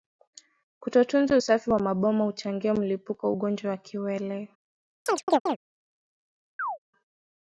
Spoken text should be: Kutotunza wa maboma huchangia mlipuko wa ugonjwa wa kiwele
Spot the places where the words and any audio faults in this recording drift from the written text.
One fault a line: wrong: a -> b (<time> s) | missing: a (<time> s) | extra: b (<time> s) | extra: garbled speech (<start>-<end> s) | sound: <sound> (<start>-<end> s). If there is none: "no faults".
extra: usafi (1.3 s)
sound: chirp (5.1-5.6 s)
sound: chirp (6.6-6.8 s)